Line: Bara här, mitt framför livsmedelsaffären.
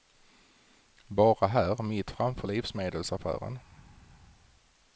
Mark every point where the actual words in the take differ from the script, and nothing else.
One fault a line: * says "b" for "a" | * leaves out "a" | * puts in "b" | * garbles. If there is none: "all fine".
all fine